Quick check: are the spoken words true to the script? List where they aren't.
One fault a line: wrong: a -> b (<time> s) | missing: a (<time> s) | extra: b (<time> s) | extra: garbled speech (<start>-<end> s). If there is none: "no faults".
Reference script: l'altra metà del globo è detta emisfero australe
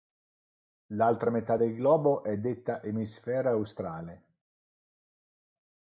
no faults